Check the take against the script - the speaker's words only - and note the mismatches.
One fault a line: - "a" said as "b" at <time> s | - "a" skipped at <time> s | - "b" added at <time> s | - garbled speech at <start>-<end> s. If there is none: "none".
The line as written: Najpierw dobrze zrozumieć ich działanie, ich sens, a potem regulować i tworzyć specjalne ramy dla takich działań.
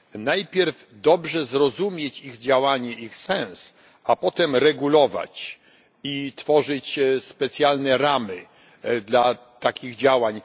none